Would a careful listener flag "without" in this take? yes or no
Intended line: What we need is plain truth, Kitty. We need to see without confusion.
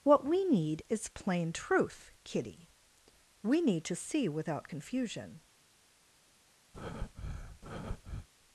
no